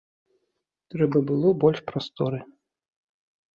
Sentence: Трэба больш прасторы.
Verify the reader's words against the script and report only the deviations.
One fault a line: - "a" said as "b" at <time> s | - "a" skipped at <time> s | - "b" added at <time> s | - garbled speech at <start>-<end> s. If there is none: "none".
- "было" added at 1.3 s